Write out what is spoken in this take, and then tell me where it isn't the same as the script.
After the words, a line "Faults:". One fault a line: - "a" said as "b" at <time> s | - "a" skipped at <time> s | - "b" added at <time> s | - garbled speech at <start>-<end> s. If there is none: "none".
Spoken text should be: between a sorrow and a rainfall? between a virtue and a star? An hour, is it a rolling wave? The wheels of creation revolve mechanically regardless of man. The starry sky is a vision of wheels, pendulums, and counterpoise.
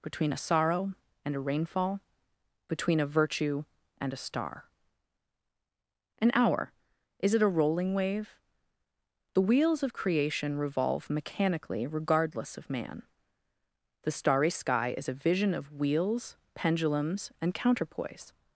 between a sorrow and a rainfall? between a virtue and a star? An hour, is it a rolling wave? The wheels of creation revolve mechanically regardless of man. The starry sky is a vision of wheels, pendulums, and counterpoise.
Faults:
none